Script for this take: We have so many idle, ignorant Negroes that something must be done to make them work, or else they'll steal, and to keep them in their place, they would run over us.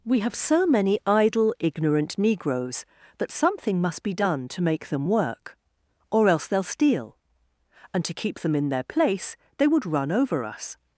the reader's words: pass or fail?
pass